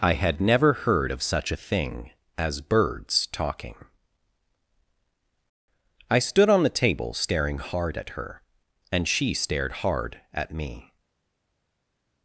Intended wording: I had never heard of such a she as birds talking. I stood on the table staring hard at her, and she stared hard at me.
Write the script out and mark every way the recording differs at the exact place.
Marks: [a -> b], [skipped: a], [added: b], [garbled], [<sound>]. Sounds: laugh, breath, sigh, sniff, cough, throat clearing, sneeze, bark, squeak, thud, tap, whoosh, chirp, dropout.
I had never heard of such a [she -> thing] as birds talking. I stood on the table staring hard at her, and she stared hard at me.